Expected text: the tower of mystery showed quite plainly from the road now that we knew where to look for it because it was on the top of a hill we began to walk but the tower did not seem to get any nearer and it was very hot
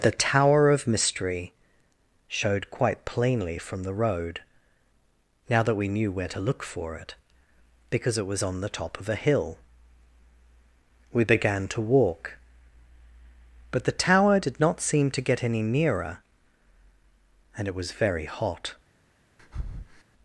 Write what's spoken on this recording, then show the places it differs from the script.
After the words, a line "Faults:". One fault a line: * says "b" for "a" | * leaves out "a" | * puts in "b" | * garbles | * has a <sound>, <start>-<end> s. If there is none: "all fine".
the tower of mystery showed quite plainly from the road now that we knew where to look for it because it was on the top of a hill we began to walk but the tower did not seem to get any nearer and it was very hot
Faults:
* has a breath, 19.4-20.0 s